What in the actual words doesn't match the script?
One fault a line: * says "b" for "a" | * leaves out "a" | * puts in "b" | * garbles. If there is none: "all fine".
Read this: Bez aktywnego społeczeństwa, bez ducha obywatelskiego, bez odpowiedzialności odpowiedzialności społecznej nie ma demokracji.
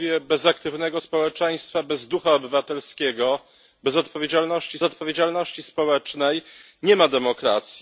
all fine